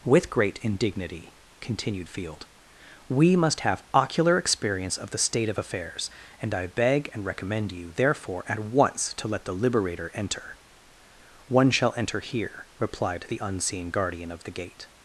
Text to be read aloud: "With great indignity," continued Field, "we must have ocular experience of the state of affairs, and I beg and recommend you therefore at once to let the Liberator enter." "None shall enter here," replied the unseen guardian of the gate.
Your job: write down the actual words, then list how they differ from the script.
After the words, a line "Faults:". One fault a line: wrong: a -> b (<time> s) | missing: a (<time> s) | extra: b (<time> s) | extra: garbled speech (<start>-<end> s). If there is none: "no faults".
"With great indignity," continued Field, "we must have ocular experience of the state of affairs, and I beg and recommend you therefore at once to let the Liberator enter." "One shall enter here," replied the unseen guardian of the gate.
Faults:
wrong: None -> One (11.5 s)